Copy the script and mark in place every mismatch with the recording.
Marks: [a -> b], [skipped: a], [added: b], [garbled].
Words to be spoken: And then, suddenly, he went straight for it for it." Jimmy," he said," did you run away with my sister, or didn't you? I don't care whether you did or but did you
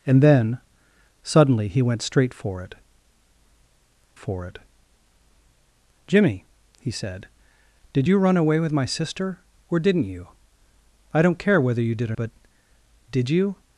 And then, suddenly, he went straight for it for it." Jimmy," he said," did you run away with my sister, or didn't you? I don't care whether you did or but did you